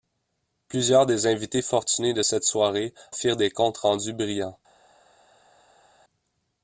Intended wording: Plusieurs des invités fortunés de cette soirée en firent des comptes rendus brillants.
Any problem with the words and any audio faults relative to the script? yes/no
yes